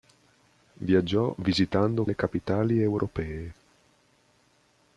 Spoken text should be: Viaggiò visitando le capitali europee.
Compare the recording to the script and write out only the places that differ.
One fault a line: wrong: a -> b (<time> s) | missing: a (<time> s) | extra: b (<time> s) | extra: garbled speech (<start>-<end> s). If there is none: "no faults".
no faults